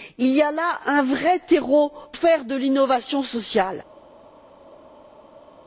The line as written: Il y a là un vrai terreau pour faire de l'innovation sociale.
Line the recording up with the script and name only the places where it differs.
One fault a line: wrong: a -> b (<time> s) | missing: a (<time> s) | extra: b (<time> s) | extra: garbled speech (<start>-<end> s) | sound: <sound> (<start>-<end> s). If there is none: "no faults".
missing: pour (1.9 s)